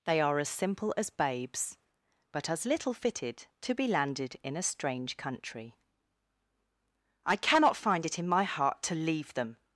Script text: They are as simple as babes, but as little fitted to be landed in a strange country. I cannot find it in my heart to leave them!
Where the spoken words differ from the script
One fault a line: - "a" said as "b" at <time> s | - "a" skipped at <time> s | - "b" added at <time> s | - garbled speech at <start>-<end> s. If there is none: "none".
none